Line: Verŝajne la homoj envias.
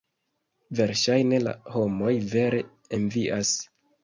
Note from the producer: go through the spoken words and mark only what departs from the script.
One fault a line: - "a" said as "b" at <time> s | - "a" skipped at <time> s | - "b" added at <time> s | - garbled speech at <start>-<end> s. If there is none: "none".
- "vere" added at 2.3 s